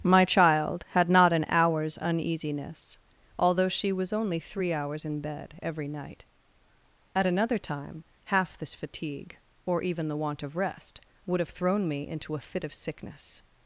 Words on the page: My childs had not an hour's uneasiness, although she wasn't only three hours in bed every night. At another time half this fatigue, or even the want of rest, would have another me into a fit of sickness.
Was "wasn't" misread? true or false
true